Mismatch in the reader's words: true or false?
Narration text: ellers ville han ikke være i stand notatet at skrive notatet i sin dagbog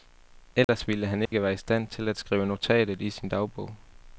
true